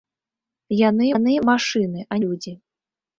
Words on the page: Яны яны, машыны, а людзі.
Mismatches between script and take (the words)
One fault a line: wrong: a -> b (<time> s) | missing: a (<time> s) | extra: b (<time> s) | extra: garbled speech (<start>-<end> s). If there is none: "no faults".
no faults